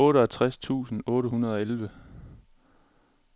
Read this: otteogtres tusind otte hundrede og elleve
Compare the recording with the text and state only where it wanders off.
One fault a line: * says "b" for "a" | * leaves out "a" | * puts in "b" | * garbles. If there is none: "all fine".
all fine